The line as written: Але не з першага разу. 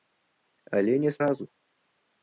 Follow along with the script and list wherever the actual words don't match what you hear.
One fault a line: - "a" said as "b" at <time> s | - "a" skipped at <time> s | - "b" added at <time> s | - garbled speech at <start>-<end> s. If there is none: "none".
- "першага" skipped at 1.2 s